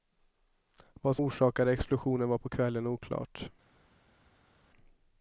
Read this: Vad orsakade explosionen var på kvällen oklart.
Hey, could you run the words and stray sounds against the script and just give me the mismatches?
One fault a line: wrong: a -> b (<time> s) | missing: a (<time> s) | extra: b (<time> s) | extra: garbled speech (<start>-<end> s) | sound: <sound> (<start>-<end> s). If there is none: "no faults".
no faults